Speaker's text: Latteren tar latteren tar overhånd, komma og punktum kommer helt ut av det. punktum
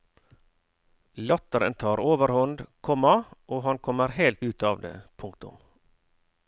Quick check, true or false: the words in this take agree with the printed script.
false